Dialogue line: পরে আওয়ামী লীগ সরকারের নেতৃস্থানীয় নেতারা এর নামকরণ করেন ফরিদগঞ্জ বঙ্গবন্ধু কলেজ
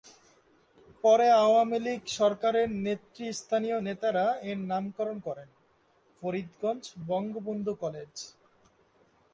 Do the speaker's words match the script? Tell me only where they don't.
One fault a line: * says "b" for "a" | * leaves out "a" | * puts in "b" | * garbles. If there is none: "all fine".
all fine